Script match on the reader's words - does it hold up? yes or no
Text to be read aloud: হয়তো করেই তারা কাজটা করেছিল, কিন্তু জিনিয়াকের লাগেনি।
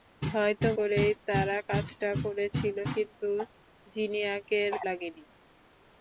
yes